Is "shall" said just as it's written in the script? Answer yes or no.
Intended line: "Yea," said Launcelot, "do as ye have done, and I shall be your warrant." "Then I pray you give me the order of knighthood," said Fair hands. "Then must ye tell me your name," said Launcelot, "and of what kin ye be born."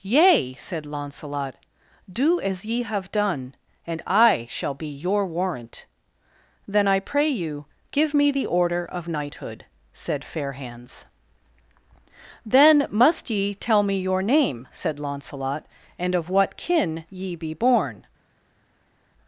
yes